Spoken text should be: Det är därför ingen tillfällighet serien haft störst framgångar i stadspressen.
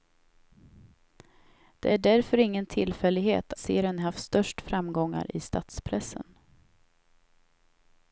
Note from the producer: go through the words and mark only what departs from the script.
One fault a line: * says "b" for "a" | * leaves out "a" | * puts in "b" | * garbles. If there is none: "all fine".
all fine